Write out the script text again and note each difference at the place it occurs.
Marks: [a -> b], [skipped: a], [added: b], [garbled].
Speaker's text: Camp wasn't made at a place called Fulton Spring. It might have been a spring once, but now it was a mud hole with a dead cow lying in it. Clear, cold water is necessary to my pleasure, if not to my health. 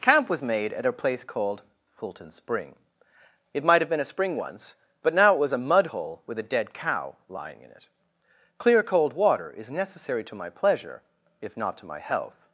Camp [wasn't -> was] made at a place called Fulton Spring. It might have been a spring once, but now it was a mud hole with a dead cow lying in it. Clear, cold water is necessary to my pleasure, if not to my health.